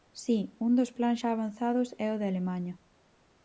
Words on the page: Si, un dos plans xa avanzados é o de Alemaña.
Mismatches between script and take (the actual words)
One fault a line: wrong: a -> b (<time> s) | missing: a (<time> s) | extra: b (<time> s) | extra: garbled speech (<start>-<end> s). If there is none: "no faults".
no faults